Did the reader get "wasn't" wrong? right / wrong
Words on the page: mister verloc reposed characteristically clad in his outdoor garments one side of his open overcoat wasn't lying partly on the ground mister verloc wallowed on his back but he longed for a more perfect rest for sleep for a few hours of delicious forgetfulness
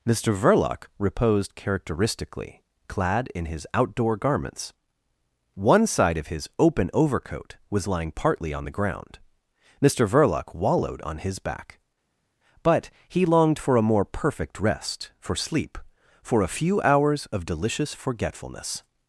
wrong